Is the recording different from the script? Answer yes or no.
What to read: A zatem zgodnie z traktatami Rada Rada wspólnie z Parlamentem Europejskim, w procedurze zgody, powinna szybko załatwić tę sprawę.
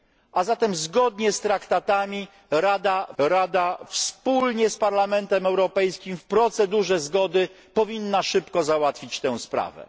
no